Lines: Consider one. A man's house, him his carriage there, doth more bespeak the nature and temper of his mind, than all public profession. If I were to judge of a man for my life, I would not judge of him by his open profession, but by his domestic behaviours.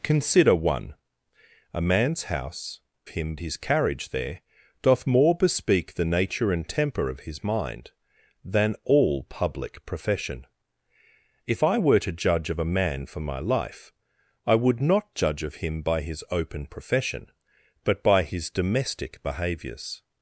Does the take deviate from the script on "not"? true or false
false